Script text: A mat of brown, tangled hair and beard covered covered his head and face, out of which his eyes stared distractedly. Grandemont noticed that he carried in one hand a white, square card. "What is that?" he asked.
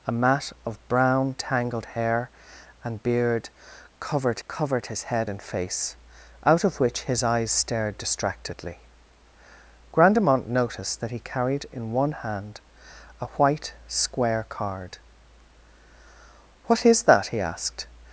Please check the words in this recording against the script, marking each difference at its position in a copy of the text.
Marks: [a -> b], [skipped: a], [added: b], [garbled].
A mat of brown, tangled hair and beard covered covered his head and face, out of which his eyes stared distractedly. Grandemont noticed that he carried in one hand a white, square card. "What is that?" he asked.